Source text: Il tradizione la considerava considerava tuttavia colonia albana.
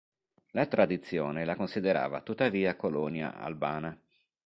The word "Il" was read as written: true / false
false